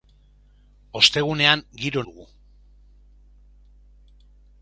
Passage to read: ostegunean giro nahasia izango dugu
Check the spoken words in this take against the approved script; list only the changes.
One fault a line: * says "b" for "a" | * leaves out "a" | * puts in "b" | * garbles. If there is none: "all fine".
* leaves out "nahasia izango"